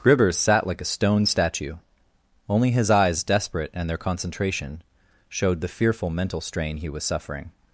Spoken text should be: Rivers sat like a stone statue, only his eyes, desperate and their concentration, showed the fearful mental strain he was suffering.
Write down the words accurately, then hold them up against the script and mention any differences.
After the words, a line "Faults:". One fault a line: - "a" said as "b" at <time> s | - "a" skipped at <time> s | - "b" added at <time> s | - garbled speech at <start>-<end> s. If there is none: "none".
Rivers sat like a stone statue, only his eyes, desperate and their concentration, showed the fearful mental strain he was suffering.
Faults:
none